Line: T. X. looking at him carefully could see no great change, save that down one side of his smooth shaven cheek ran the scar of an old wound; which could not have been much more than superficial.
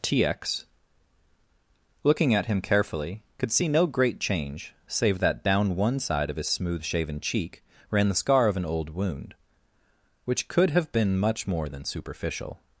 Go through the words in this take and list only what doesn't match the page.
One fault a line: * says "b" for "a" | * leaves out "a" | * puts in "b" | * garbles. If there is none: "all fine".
* leaves out "not"